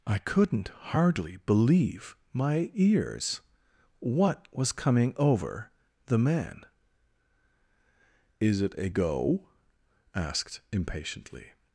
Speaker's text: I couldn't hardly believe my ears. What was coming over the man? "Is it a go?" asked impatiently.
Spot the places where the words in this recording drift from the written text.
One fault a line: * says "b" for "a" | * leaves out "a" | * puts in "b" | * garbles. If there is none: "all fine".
all fine